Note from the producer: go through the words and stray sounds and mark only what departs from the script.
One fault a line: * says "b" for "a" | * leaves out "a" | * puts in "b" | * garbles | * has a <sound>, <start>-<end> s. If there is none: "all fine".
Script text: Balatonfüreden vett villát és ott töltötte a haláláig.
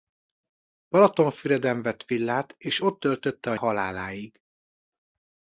all fine